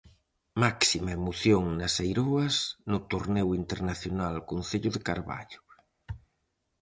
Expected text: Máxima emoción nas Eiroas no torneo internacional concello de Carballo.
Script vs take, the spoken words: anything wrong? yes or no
no